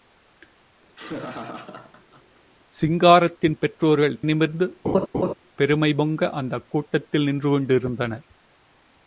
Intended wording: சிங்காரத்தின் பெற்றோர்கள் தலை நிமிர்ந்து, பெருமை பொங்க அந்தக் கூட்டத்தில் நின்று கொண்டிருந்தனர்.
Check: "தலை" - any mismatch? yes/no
yes